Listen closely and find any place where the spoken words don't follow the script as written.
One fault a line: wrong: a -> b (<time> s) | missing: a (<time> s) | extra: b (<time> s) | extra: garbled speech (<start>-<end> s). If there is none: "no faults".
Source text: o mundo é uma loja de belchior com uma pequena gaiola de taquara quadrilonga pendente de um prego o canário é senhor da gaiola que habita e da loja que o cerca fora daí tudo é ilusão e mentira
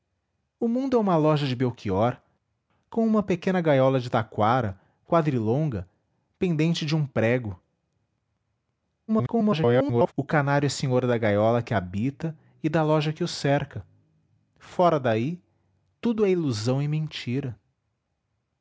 extra: garbled speech (9.1-10.1 s)